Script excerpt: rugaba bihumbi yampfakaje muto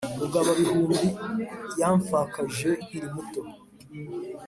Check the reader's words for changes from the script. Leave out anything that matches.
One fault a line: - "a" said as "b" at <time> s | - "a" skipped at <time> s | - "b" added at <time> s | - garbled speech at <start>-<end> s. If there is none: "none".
- "nkiri" added at 2.8 s